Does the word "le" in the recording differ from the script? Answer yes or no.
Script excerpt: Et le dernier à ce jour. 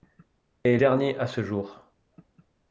yes